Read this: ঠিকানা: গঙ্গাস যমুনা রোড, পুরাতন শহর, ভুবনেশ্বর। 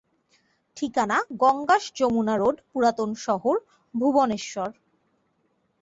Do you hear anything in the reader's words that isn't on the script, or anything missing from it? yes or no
no